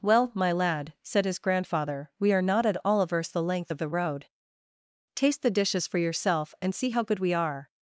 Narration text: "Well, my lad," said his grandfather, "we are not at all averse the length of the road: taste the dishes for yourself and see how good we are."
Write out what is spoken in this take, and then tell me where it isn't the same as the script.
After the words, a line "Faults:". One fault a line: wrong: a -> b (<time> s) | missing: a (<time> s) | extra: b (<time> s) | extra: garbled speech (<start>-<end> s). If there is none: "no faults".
"Well, my lad," said his grandfather, "we are not at all averse the length of the road: taste the dishes for yourself and see how good we are."
Faults:
no faults